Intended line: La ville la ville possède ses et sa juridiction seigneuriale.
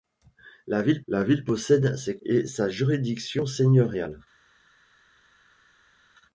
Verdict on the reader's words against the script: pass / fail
pass